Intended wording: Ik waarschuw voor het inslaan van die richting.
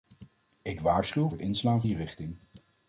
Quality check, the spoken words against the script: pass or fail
fail